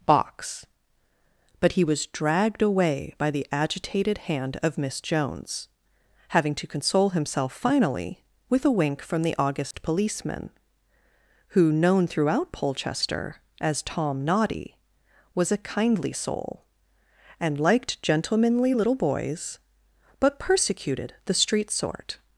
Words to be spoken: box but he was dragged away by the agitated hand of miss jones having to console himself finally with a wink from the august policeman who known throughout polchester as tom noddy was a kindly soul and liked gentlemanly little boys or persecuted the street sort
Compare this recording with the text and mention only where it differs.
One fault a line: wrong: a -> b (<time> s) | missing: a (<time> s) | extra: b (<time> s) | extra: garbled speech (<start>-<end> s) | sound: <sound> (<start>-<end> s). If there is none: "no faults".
sound: dropout (9.7-9.7 s)
wrong: or -> but (20.2 s)